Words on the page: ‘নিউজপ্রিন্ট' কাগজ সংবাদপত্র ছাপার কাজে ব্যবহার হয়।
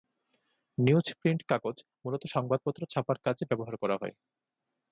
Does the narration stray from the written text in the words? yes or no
yes